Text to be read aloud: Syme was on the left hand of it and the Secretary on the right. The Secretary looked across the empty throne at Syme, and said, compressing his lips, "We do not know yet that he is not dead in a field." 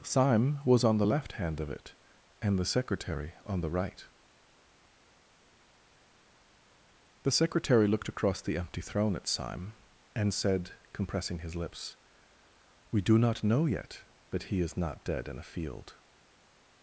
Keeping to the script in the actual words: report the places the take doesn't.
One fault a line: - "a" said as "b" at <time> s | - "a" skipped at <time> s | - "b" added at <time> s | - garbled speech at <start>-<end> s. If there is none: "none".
none